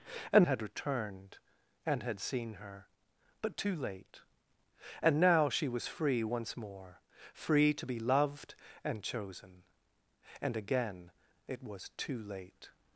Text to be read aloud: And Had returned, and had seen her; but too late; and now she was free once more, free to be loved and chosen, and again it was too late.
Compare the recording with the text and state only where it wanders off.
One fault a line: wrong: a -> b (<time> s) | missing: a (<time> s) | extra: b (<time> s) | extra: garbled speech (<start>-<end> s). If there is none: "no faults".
no faults